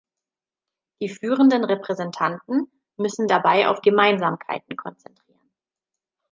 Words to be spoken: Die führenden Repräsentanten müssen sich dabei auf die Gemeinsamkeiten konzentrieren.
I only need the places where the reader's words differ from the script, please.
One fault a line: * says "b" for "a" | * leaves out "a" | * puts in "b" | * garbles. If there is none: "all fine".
* leaves out "sich"
* leaves out "die"